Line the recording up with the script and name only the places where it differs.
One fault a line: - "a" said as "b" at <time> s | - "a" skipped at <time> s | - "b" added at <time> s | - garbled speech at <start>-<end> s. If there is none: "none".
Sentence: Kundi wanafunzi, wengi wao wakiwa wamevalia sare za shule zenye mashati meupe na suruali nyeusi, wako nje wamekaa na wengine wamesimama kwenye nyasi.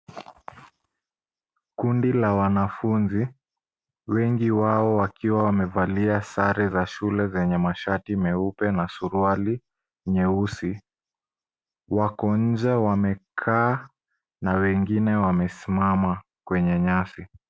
- "la" added at 2.1 s